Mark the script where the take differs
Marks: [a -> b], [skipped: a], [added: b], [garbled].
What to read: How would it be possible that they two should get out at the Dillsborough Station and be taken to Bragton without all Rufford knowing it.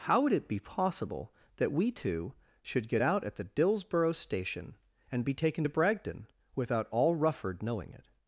How would it be possible that [they -> we] two should get out at the Dillsborough Station and be taken to Bragton without all Rufford knowing it.